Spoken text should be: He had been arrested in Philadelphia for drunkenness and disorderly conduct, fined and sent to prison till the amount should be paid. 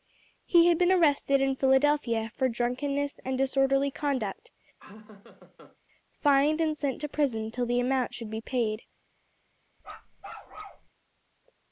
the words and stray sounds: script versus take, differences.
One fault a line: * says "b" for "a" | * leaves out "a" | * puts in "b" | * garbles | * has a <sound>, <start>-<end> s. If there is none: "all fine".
* has a laugh, 4.8-5.8 s
* has a bark, 9.8-10.9 s